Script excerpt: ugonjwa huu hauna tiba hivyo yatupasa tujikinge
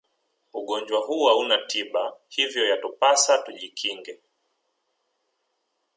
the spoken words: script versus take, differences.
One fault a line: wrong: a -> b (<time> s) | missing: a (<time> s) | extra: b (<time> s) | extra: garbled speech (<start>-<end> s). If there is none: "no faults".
no faults